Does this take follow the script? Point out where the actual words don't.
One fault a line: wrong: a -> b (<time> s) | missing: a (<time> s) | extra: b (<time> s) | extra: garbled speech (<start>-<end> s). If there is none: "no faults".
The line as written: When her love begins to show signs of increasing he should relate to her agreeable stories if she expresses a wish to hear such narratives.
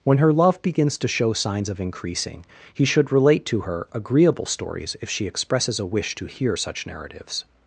no faults